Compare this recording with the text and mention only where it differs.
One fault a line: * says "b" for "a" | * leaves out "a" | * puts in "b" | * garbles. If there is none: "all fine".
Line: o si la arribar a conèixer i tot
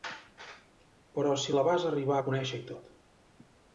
* says "però" for "o"
* puts in "vas"